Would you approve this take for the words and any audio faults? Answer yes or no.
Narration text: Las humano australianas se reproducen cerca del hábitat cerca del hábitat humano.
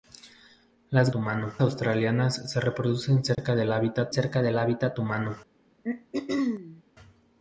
no